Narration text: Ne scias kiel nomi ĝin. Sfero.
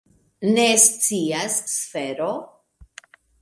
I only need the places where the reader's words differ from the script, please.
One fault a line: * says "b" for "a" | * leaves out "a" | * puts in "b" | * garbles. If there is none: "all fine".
* leaves out "kiel nomi ĝin"